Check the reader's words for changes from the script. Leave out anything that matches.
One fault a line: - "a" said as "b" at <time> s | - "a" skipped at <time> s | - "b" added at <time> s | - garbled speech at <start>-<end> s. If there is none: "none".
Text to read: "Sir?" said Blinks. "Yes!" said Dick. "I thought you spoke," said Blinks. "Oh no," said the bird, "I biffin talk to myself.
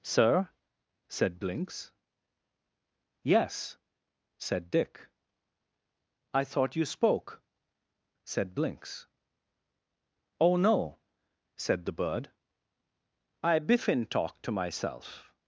none